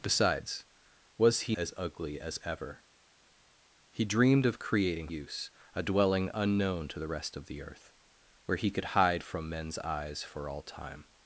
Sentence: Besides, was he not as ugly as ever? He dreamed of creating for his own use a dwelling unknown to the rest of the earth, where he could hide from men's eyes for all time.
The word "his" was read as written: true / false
false